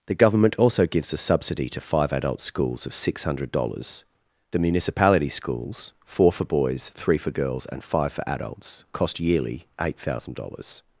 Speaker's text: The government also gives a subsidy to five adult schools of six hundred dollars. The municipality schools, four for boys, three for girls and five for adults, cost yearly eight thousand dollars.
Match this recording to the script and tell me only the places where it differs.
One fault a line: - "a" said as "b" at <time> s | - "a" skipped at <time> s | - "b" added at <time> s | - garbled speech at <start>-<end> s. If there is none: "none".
none